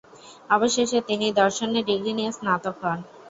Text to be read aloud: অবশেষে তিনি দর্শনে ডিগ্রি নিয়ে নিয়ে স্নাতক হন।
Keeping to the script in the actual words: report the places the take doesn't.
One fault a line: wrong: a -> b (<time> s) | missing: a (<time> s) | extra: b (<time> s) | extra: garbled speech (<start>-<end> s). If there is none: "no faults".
missing: নিয়ে (2.3 s)